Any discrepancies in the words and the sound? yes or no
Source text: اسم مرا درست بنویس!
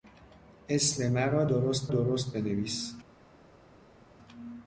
yes